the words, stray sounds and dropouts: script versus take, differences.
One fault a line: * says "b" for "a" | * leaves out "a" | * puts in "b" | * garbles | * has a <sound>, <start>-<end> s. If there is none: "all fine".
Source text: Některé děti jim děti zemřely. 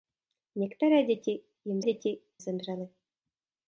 all fine